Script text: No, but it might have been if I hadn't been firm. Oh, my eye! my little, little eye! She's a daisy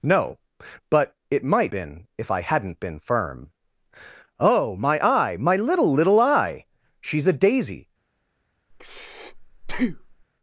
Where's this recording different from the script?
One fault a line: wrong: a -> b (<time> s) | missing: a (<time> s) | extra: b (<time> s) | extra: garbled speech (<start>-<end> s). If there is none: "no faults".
missing: have (1.7 s)